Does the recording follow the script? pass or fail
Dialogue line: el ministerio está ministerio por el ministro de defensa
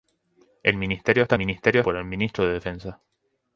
pass